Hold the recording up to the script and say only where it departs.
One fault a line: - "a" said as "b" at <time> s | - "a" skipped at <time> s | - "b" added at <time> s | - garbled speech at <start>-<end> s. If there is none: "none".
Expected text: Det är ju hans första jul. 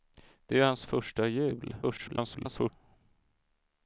- garbled speech at 1.8-2.7 s